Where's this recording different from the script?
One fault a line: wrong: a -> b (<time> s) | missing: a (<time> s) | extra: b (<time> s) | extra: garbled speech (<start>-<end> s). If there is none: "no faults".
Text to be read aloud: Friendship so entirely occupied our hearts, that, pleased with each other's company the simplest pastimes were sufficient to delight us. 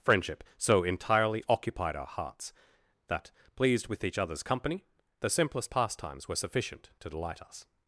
no faults